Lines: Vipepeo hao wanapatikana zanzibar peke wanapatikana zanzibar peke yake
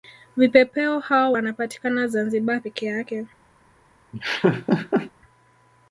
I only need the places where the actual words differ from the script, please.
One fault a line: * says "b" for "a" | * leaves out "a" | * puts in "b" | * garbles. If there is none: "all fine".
* leaves out "wanapatikana zanzibar peke"